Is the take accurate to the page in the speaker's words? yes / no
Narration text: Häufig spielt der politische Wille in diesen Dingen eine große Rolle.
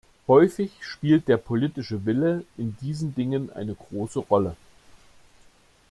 yes